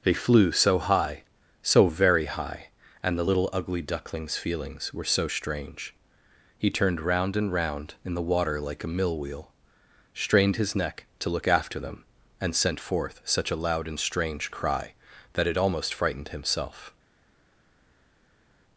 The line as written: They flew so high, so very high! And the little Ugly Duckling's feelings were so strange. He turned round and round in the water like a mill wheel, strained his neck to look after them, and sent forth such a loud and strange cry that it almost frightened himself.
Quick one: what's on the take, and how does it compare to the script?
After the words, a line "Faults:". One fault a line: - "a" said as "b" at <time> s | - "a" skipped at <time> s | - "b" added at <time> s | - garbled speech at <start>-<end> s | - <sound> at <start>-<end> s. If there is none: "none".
They flew so high, so very high! And the little Ugly Duckling's feelings were so strange. He turned round and round in the water like a mill wheel, strained his neck to look after them, and sent forth such a loud and strange cry that it almost frightened himself.
Faults:
none